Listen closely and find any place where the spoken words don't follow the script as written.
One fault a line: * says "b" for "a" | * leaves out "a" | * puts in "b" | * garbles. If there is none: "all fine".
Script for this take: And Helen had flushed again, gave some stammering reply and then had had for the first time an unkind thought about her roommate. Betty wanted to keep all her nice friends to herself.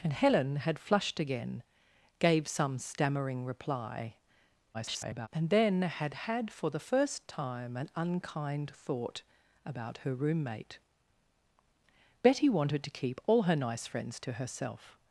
* garbles